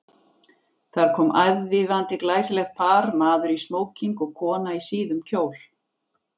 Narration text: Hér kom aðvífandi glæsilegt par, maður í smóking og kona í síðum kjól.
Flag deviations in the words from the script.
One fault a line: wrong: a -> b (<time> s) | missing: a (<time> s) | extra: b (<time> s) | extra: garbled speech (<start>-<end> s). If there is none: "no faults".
wrong: Hér -> Þar (0.9 s)